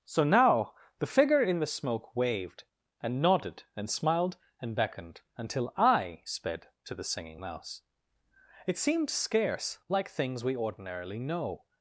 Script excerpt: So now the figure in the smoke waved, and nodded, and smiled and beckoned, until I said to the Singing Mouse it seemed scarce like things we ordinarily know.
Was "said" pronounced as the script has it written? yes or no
no